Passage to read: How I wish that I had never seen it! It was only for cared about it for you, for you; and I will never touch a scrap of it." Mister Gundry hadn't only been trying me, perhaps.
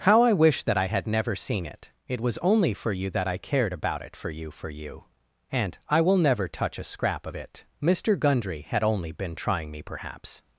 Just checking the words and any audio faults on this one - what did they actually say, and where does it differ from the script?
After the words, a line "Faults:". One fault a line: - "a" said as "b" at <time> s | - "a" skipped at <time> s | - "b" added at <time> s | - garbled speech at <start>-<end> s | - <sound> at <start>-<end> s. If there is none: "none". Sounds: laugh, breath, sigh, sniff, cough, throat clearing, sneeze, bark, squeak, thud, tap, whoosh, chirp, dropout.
How I wish that I had never seen it! It was only for you that I cared about it for you, for you; and I will never touch a scrap of it." Mister Gundry had only been trying me, perhaps.
Faults:
- "you that I" added at 2.9 s
- "hadn't" said as "had" at 8.6 s